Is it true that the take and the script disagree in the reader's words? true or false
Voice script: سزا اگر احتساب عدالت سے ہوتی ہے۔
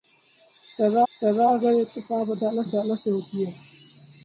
true